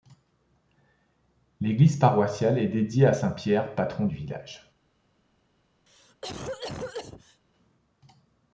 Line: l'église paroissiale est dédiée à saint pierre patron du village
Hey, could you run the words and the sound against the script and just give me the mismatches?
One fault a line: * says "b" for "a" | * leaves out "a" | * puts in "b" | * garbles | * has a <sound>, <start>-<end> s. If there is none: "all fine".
* has a cough, 5.9-7.4 s